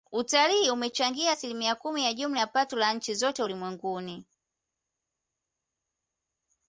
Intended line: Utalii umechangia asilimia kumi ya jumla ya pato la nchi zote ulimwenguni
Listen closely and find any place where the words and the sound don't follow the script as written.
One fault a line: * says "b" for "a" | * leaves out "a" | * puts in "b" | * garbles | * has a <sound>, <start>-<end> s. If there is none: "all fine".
all fine